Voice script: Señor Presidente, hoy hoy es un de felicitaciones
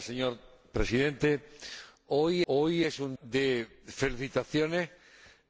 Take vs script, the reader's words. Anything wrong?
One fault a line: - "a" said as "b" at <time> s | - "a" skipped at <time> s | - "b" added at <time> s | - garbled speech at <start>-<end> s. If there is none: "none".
none